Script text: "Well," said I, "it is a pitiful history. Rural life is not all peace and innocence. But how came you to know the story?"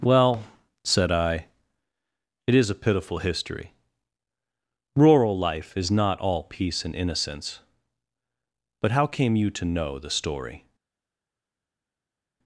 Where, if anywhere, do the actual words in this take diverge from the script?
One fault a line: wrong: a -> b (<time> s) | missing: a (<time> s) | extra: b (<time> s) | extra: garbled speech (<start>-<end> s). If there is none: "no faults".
no faults